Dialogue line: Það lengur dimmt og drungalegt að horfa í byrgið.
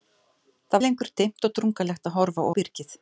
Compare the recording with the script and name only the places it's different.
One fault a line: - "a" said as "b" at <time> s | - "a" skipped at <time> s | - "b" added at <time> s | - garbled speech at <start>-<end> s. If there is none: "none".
none